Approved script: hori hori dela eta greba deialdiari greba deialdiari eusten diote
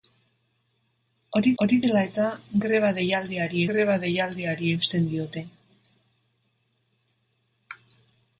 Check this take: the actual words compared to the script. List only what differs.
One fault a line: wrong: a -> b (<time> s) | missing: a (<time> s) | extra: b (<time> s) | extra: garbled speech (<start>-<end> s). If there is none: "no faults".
no faults